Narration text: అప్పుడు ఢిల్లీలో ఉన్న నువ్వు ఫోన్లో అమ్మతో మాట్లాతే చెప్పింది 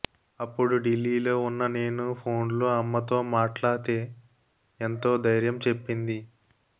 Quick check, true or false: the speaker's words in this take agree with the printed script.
false